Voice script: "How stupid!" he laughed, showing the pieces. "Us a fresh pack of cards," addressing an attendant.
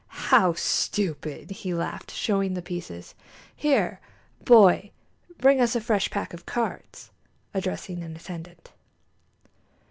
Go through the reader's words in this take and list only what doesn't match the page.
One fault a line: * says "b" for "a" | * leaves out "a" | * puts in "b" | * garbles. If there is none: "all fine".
* puts in "Here boy bring"